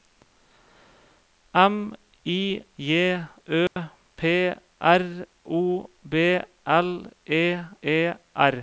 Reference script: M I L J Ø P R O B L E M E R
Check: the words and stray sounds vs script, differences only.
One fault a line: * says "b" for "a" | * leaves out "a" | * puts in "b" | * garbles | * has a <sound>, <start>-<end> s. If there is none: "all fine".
* leaves out "L"
* has a dropout, 3.7-3.8 s
* leaves out "M"